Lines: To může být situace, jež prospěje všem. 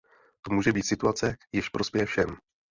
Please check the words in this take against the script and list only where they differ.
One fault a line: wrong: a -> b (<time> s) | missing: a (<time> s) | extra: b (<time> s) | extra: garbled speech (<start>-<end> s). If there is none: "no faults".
no faults